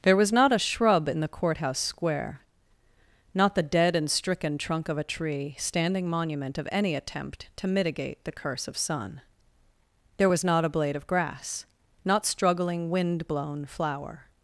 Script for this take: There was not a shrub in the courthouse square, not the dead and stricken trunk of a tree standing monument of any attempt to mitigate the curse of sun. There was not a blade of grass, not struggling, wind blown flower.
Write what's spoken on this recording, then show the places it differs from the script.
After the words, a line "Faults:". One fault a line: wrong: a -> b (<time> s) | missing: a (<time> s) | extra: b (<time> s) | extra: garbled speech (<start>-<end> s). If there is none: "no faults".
There was not a shrub in the courthouse square, not the dead and stricken trunk of a tree standing monument of any attempt to mitigate the curse of sun. There was not a blade of grass, not struggling, wind blown flower.
Faults:
no faults